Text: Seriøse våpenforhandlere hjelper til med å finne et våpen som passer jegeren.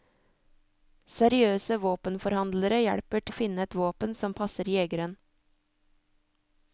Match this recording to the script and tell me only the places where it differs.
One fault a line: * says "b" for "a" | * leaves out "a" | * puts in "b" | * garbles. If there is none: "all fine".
* leaves out "til med"